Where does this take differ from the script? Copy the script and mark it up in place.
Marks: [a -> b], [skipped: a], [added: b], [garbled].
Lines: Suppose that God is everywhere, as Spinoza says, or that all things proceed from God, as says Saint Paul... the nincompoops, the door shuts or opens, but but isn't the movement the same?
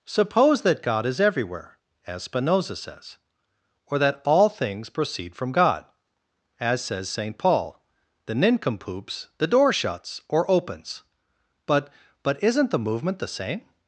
Suppose that God is everywhere, as Spinoza says, or that all things proceed from God, as says Saint Paul... the nincompoops, the door shuts or opens, but but isn't the movement the same?